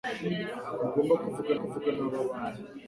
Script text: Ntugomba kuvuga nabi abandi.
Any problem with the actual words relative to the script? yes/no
yes